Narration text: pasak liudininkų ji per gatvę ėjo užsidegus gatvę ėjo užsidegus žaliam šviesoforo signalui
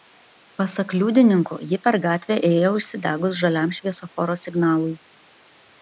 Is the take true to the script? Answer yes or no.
no